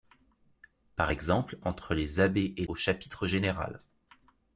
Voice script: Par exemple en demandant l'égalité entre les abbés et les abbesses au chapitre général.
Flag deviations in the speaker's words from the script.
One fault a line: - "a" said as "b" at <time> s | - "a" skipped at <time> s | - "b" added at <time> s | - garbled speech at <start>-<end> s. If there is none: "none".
- "en demandant l'égalité" skipped at 1.6 s
- "les abbesses" skipped at 2.6 s